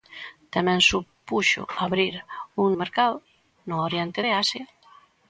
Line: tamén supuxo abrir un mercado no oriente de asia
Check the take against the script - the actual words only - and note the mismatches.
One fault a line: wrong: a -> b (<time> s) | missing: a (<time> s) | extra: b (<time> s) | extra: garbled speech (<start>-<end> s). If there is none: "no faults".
no faults